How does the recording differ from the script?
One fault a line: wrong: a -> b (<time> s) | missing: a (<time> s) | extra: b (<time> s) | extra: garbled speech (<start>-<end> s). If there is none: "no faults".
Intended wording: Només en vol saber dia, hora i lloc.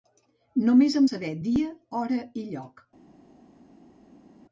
missing: vol (1.1 s)